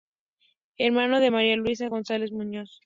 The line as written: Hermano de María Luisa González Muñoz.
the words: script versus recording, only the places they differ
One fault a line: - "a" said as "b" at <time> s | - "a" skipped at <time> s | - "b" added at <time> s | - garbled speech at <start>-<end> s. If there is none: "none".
none